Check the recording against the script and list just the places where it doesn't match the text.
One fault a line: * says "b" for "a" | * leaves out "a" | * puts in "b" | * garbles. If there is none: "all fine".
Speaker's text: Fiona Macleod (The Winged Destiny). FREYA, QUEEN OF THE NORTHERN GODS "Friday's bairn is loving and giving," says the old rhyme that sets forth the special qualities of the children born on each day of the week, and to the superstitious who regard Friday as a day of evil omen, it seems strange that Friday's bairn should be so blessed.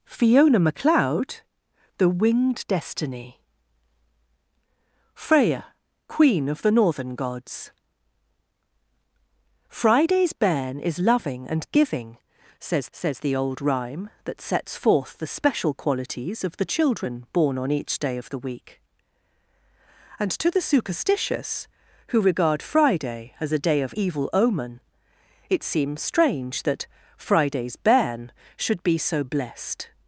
* puts in "says"